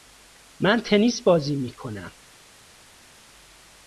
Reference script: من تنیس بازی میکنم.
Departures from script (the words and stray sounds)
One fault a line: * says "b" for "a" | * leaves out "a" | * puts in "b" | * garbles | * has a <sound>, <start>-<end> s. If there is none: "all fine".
all fine